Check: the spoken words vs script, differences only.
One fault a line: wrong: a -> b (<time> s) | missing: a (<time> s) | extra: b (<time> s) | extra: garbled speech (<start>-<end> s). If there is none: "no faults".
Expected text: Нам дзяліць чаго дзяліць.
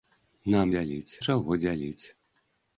no faults